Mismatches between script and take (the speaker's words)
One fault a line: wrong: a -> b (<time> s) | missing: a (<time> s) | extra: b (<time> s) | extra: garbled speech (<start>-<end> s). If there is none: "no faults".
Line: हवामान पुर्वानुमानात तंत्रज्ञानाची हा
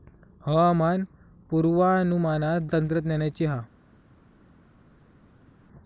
no faults